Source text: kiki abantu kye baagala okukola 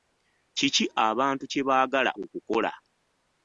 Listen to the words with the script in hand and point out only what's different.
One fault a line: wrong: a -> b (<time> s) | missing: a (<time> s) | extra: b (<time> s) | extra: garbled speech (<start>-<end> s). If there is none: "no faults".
no faults